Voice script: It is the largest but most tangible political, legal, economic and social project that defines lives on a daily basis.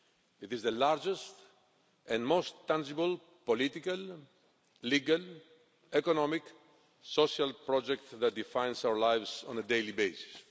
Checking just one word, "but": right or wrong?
wrong